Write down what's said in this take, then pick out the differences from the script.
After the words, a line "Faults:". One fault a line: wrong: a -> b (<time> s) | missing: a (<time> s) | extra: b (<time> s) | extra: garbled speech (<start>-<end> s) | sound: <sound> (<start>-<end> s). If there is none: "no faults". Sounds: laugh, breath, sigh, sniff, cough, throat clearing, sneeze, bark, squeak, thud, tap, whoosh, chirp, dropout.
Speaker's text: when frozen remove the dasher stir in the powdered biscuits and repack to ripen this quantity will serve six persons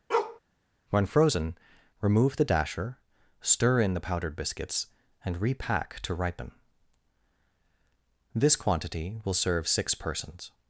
when frozen remove the dasher stir in the powdered biscuits and repack to ripen this quantity will serve six persons
Faults:
sound: bark (0.1-0.4 s)